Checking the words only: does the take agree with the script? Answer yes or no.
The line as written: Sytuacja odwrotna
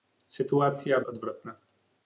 yes